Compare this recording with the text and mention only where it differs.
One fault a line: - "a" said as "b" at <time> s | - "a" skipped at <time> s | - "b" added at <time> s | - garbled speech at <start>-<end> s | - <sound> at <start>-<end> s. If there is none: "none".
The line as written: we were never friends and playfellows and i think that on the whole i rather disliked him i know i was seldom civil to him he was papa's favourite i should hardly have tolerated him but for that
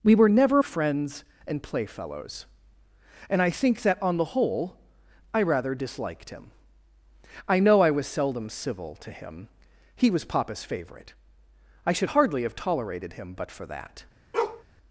- bark at 14.3-14.6 s